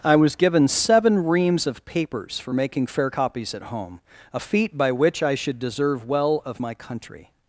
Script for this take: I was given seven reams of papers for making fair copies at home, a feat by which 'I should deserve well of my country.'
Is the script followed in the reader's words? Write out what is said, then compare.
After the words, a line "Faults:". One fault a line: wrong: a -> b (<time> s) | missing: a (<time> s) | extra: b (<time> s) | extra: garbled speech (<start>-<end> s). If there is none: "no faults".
I was given seven reams of papers for making fair copies at home, a feat by which 'I should deserve well of my country.'
Faults:
no faults